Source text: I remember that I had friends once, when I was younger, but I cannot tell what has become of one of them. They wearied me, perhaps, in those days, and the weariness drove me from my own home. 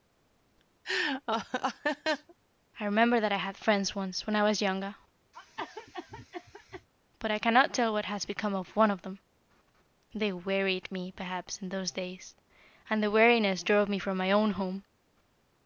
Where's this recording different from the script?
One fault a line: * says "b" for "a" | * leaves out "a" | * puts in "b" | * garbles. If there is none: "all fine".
all fine